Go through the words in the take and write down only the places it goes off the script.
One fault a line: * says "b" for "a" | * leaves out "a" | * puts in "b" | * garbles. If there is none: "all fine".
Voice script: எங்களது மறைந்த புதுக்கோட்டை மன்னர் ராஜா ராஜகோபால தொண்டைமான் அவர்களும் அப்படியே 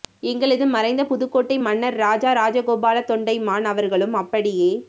all fine